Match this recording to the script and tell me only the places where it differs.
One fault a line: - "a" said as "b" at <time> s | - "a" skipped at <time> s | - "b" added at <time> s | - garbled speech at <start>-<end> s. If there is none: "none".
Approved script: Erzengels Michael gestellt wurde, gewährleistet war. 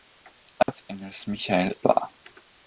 - "gestellt wurde gewährleistet" skipped at 1.8 s